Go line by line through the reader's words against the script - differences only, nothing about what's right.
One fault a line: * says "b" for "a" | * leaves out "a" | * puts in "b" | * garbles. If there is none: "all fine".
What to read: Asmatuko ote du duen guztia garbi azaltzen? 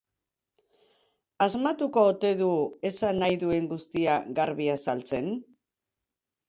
* puts in "esan nahi"